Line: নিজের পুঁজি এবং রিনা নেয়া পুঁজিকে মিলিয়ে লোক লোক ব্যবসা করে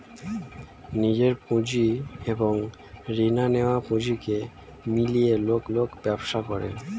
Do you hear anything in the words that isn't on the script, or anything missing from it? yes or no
no